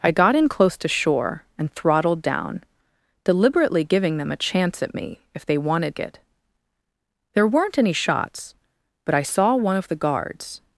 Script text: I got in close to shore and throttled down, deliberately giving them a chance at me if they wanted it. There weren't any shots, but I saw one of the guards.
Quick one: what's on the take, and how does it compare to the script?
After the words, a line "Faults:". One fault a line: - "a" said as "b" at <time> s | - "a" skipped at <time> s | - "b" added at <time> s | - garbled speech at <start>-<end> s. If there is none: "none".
I got in close to shore and throttled down, deliberately giving them a chance at me if they wanted it. There weren't any shots, but I saw one of the guards.
Faults:
none